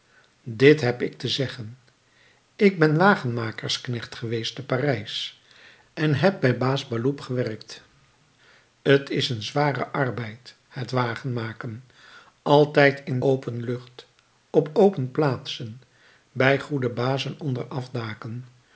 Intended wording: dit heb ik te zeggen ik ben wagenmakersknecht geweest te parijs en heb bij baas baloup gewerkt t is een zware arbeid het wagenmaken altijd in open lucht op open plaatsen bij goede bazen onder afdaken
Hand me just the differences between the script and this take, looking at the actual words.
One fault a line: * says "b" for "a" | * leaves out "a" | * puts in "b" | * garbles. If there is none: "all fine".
all fine